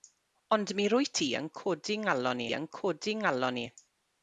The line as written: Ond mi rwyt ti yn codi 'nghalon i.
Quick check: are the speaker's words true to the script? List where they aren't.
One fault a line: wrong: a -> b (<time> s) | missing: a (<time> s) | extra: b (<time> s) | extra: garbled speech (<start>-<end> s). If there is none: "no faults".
extra: yn codi nghalon (2.6 s)